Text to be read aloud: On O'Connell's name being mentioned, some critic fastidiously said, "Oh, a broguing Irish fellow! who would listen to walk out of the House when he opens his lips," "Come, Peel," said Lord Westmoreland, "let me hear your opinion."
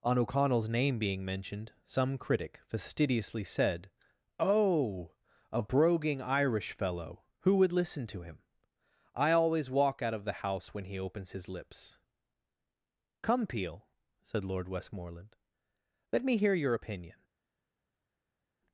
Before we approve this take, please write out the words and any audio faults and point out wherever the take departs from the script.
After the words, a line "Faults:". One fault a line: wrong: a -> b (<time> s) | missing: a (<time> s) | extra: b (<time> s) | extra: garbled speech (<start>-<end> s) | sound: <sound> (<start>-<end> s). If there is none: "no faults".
On O'Connell's name being mentioned, some critic fastidiously said, "Oh, a broguing Irish fellow! who would listen to him? I always walk out of the House when he opens his lips," "Come, Peel," said Lord Westmoreland, "let me hear your opinion."
Faults:
extra: him I always (8.2 s)